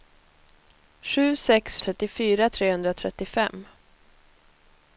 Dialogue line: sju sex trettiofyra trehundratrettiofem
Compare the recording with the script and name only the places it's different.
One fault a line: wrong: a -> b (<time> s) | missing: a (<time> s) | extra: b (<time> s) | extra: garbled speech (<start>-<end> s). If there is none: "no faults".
no faults